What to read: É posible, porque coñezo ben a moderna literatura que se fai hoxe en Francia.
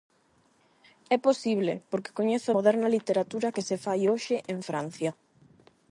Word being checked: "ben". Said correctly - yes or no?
no